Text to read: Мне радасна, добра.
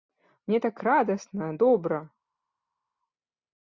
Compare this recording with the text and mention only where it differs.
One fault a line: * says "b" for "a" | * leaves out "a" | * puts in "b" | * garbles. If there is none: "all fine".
* puts in "так"